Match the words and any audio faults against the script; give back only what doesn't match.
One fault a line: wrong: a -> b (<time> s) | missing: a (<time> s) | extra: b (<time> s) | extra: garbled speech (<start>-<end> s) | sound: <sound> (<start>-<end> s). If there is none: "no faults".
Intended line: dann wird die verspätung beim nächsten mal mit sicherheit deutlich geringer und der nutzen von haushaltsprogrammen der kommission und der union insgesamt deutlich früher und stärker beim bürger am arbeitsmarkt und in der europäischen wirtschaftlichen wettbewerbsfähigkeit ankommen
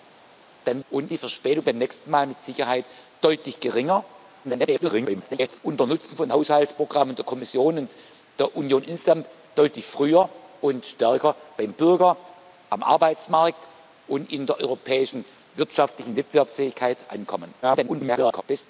wrong: wird -> und (0.9 s)
extra: garbled speech (4.4-5.6 s)
extra: garbled speech (17.6-18.4 s)